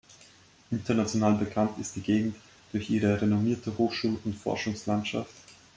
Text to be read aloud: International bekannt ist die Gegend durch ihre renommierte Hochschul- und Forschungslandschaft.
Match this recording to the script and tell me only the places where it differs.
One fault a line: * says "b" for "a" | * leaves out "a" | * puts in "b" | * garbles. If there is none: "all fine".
all fine